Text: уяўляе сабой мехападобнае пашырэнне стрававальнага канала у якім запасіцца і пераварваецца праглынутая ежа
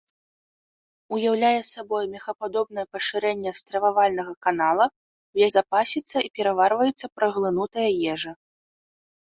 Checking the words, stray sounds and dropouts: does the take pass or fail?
fail